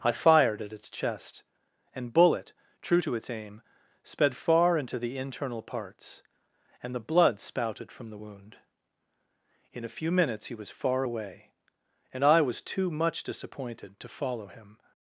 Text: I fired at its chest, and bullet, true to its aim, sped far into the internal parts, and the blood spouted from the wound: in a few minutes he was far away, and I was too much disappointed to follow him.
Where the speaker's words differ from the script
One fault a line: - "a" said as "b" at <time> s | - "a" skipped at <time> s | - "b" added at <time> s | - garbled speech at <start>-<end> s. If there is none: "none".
none